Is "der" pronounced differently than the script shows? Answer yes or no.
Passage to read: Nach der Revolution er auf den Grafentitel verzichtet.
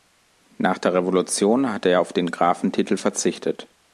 no